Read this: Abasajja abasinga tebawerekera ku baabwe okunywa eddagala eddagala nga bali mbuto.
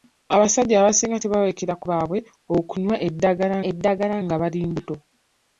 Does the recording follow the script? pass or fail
pass